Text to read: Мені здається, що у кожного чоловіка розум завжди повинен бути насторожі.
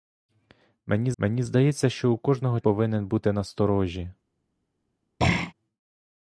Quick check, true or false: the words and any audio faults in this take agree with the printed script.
false